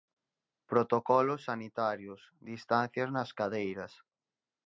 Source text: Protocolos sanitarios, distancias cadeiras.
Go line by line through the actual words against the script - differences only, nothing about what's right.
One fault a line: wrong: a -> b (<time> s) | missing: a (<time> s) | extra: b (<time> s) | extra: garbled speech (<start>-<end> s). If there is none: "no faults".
extra: nas (3.1 s)